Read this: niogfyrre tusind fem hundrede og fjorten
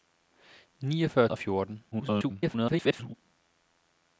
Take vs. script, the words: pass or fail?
fail